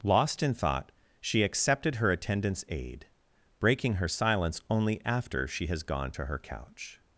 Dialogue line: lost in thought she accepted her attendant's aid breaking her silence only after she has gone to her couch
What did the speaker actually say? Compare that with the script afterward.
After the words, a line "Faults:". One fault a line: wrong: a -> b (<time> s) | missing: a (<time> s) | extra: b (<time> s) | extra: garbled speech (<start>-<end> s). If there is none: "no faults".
lost in thought she accepted her attendant's aid breaking her silence only after she has gone to her couch
Faults:
no faults